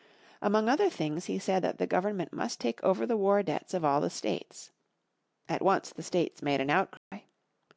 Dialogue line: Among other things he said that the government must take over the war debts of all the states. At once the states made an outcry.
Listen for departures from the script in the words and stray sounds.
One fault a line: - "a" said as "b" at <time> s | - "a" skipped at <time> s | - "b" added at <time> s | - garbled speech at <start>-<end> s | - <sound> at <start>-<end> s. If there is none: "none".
- dropout at 7.0-7.1 s